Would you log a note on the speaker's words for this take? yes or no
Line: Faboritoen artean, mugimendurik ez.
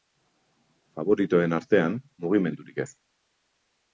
no